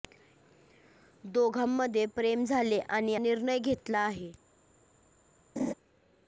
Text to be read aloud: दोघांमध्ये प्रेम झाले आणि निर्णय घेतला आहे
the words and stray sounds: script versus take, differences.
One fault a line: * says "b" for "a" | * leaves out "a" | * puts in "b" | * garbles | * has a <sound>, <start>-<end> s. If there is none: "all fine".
* has a laugh, 5.6-5.7 s